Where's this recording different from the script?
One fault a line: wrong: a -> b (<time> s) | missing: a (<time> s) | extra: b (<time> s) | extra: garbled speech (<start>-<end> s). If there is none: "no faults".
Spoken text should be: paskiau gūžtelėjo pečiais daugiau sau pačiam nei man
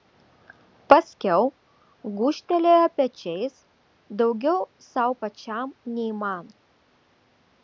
no faults